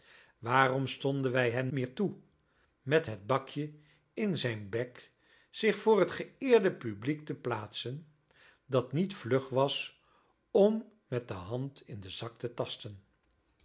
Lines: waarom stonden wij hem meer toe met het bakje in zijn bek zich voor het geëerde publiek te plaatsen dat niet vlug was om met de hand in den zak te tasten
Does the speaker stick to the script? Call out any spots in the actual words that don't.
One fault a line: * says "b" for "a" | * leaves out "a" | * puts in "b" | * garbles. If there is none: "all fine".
all fine